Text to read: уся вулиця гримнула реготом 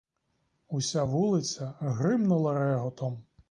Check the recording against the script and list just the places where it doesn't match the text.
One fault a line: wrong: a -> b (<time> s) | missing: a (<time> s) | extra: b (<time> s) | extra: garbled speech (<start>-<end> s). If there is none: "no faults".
no faults